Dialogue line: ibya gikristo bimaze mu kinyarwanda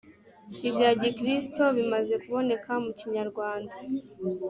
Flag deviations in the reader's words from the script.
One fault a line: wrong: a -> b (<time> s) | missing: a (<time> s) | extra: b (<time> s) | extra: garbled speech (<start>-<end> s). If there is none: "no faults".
extra: kuboneka (2.2 s)